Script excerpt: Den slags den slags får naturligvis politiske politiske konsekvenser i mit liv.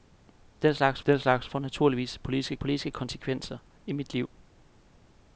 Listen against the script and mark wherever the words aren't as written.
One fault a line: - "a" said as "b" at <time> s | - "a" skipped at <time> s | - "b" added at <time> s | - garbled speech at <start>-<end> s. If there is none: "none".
none